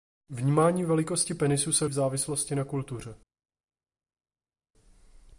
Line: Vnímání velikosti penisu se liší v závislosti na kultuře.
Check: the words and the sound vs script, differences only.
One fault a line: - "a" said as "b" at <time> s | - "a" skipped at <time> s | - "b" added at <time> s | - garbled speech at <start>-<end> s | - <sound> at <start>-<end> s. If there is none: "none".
- "liší" skipped at 1.9 s